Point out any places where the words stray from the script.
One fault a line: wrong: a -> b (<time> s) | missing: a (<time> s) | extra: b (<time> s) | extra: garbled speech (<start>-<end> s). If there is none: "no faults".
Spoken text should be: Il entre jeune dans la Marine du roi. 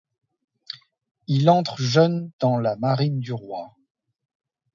no faults